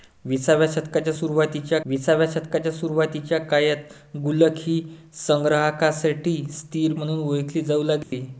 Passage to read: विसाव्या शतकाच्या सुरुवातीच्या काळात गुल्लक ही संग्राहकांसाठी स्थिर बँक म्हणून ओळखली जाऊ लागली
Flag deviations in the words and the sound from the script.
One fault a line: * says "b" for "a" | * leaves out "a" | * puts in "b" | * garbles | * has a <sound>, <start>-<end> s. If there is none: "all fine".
* puts in "विसाव्या शतकाच्या सुरुवातीच्या"
* leaves out "बँक"
* has a dropout, 8.0-8.1 s